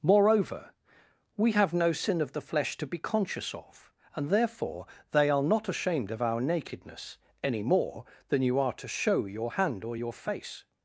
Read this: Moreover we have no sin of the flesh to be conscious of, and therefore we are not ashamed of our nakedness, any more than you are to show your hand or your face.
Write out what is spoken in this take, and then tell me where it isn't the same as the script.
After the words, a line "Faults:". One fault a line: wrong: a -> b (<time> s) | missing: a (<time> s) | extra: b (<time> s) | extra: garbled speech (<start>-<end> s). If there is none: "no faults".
Moreover we have no sin of the flesh to be conscious of, and therefore they are not ashamed of our nakedness, any more than you are to show your hand or your face.
Faults:
wrong: we -> they (5.1 s)